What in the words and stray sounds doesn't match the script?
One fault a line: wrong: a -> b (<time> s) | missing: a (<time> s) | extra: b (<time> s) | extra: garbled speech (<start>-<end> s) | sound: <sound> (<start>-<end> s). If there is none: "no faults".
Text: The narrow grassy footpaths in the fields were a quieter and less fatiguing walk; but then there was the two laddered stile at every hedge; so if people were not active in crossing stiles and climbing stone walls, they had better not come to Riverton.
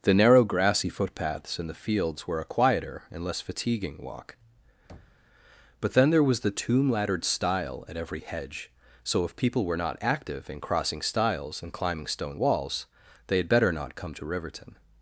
sound: thud (4.9-5.3 s)
wrong: two -> tomb (6.5 s)